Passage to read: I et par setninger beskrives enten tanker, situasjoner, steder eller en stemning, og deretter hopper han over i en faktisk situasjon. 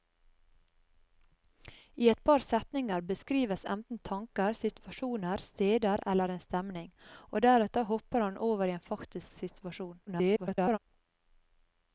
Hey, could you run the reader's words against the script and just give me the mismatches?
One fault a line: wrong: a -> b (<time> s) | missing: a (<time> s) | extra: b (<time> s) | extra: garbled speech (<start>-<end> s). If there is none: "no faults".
extra: garbled speech (10.1-10.8 s)